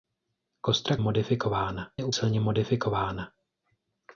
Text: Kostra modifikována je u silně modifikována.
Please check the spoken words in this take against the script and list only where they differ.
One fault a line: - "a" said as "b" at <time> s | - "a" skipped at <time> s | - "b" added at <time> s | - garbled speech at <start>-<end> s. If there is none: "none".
none